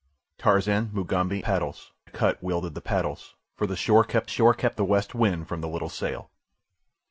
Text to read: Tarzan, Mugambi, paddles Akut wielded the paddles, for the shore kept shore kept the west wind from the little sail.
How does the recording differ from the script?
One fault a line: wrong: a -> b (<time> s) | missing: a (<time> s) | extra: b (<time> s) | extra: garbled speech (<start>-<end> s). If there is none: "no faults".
no faults